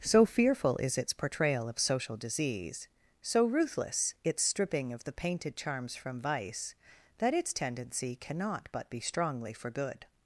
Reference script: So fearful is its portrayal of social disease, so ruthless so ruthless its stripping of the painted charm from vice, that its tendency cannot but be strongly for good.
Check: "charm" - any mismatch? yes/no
yes